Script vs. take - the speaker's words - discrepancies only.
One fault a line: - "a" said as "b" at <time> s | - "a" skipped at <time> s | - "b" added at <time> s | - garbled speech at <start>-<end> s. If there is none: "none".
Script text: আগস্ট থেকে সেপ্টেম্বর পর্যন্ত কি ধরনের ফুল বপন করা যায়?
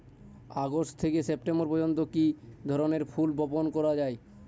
none